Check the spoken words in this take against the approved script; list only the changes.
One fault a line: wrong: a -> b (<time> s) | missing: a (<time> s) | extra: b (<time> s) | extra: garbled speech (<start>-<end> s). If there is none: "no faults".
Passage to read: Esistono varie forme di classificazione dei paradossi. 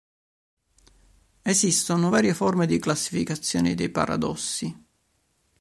no faults